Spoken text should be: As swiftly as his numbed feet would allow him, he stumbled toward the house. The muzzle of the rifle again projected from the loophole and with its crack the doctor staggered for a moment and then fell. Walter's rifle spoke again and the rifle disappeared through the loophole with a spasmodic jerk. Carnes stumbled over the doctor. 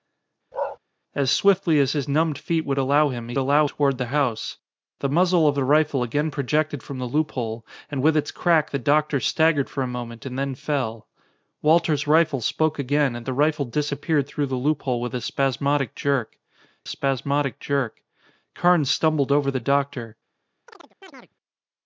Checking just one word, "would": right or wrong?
right